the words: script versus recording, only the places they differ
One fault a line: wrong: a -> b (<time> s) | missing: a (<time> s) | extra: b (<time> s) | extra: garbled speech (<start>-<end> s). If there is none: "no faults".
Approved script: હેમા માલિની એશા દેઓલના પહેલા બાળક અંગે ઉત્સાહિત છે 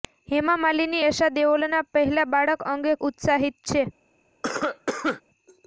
no faults